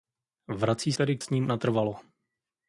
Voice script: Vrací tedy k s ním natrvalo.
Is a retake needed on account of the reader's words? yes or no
no